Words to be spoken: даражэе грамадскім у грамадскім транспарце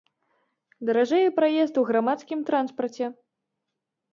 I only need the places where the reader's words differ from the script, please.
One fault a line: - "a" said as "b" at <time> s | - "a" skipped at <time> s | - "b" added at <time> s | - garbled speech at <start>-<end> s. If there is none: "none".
- "грамадскім" said as "праезд" at 1.4 s